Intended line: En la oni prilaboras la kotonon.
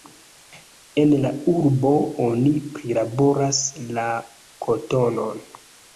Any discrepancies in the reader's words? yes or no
yes